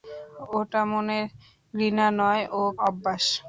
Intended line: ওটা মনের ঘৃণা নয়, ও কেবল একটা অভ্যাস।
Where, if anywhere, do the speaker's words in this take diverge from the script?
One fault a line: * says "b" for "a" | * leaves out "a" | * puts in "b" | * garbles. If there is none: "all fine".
* leaves out "কেবল একটা"